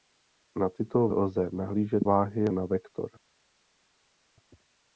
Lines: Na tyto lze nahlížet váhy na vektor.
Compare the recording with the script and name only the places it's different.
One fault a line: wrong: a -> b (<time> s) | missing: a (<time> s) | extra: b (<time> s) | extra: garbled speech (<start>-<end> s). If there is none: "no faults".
no faults